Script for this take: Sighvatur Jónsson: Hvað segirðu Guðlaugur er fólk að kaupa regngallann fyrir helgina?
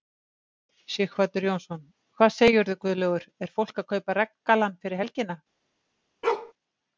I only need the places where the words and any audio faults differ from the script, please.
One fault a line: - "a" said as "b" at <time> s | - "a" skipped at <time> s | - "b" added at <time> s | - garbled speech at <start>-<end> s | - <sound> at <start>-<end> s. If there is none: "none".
- bark at 6.2-6.5 s